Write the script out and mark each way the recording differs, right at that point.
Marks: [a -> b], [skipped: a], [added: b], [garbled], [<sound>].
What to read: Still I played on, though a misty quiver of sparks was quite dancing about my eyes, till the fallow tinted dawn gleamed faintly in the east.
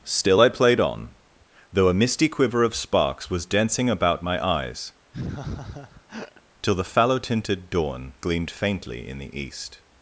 Still I played on, though a misty quiver of sparks was [skipped: quite] dancing about my eyes, [laugh] till the fallow tinted dawn gleamed faintly in the east.